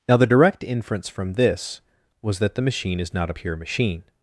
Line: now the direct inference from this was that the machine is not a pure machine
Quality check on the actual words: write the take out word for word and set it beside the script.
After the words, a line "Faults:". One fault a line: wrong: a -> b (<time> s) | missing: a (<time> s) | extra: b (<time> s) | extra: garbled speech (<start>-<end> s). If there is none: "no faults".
now the direct inference from this was that the machine is not a pure machine
Faults:
no faults